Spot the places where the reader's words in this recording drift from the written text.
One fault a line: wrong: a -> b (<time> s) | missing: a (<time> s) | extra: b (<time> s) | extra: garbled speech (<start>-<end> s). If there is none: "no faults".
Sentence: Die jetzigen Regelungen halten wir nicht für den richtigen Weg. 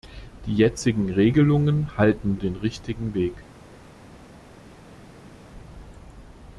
missing: wir nicht für (2.4 s)